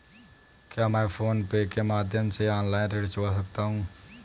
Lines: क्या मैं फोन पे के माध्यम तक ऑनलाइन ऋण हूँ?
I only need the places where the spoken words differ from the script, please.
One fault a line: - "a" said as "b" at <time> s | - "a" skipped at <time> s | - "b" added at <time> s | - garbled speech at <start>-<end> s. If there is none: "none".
- "तक" said as "से" at 2.3 s
- "चुका सकता" added at 3.1 s